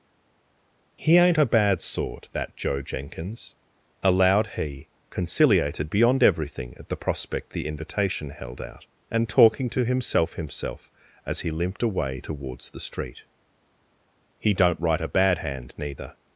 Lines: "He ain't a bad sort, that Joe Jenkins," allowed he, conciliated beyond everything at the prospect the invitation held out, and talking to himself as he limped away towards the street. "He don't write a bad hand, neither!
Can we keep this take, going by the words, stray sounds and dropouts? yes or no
no